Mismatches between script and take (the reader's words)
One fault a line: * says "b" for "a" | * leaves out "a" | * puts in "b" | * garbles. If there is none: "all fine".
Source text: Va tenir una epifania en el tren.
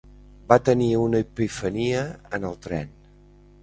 all fine